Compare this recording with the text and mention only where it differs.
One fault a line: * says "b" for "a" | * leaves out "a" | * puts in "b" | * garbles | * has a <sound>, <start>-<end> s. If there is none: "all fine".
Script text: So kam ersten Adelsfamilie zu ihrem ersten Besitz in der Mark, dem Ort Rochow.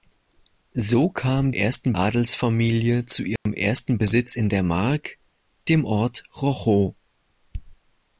* has a dropout, 3.4-3.5 s